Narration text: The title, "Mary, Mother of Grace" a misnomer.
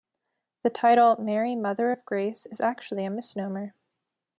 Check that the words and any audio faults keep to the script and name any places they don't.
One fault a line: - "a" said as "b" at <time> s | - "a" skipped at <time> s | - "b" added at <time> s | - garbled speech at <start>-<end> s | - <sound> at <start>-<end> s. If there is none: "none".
- "is actually" added at 2.5 s